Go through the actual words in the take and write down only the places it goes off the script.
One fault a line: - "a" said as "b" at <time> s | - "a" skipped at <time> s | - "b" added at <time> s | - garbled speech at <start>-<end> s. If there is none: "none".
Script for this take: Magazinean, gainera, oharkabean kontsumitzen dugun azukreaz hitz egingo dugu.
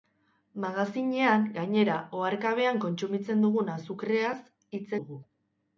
- "egingo" skipped at 4.8 s